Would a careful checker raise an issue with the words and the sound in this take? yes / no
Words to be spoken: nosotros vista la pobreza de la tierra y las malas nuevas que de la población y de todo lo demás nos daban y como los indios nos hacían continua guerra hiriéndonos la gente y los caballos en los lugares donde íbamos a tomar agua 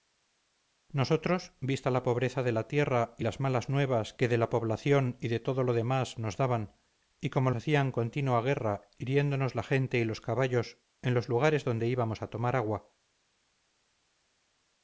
yes